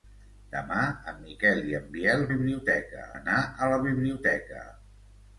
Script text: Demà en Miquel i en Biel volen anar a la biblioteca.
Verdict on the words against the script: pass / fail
fail